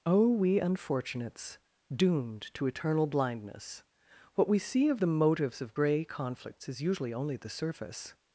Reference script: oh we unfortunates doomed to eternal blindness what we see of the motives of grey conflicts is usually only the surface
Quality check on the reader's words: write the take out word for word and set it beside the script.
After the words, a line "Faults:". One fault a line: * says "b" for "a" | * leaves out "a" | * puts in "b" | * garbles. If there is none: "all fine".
oh we unfortunates doomed to eternal blindness what we see of the motives of grey conflicts is usually only the surface
Faults:
all fine